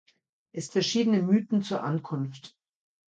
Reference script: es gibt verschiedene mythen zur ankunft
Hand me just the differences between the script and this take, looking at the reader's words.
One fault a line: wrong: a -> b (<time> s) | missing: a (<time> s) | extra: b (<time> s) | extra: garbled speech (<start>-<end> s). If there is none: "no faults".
missing: gibt (0.7 s)